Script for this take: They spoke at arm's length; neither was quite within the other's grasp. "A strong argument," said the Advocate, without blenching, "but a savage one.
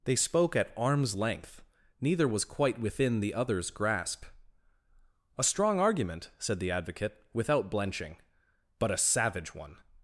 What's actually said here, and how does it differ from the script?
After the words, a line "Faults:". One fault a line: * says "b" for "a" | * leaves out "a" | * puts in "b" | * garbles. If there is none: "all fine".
They spoke at arm's length; neither was quite within the other's grasp. "A strong argument," said the Advocate, without blenching, "but a savage one.
Faults:
all fine